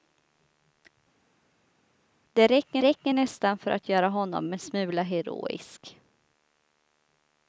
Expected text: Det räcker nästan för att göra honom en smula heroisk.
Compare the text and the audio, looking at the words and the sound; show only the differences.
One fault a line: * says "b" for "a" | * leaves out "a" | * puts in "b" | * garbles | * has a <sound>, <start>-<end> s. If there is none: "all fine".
* puts in "räcker"